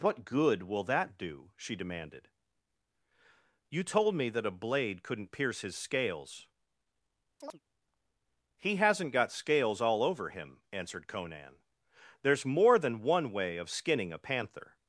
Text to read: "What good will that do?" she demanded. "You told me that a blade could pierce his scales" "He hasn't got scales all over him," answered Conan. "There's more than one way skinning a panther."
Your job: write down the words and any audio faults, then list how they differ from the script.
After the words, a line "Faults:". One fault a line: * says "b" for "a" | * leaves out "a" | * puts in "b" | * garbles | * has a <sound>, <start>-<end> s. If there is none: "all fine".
"What good will that do?" she demanded. "You told me that a blade couldn't pierce his scales" "He hasn't got scales all over him," answered Conan. "There's more than one way of skinning a panther."
Faults:
* says "couldn't" for "could"
* has a chirp, 7.4-7.6 s
* puts in "of"